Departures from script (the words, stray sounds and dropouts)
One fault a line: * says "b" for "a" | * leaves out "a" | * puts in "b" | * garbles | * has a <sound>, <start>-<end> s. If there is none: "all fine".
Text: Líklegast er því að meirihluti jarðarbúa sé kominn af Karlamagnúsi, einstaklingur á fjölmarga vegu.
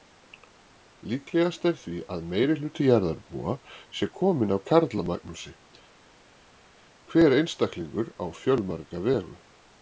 * puts in "hver"